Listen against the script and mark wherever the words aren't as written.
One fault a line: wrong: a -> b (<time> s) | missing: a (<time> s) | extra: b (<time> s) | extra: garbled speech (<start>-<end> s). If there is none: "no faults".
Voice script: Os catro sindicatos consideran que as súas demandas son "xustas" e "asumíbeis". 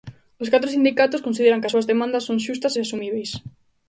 no faults